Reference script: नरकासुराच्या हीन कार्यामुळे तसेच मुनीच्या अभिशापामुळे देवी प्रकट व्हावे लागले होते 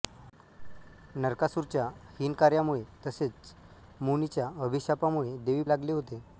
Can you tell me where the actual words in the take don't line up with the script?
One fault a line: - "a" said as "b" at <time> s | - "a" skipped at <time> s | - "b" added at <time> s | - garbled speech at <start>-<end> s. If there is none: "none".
- "प्रकट व्हावे" skipped at 5.6 s